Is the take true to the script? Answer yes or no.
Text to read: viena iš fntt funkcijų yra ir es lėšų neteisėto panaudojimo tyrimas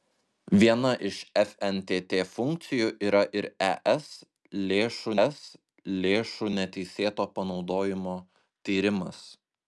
no